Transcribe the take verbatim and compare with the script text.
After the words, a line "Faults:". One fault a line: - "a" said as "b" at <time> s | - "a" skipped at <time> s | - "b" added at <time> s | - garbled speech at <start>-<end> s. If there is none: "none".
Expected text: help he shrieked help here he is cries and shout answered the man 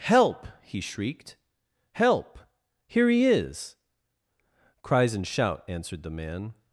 help he shrieked help here he is cries and shout answered the man
Faults:
none